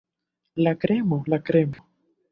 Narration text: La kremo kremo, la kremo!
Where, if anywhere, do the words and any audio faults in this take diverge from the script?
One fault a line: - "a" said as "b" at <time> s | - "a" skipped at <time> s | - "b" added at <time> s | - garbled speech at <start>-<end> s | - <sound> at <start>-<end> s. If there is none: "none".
- "kremo" skipped at 1.2 s
- dropout at 1.7-1.8 s